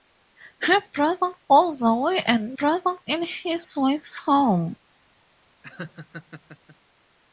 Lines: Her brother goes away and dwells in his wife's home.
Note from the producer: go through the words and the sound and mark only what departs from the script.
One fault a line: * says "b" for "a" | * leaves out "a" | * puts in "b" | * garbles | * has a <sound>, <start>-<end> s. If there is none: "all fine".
* says "brother" for "dwells"
* has a laugh, 5.6-6.8 s